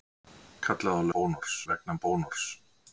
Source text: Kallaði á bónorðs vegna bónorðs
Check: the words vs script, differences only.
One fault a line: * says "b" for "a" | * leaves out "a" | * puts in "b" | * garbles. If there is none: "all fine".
all fine